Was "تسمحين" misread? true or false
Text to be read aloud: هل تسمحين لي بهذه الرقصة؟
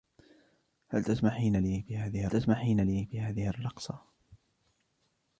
false